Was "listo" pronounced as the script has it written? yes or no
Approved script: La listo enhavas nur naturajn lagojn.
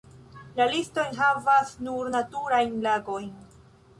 yes